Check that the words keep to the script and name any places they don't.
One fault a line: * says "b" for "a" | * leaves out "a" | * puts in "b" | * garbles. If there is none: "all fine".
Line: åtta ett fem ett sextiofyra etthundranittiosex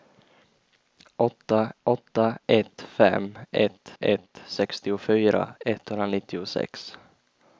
* puts in "åtta"
* puts in "ett"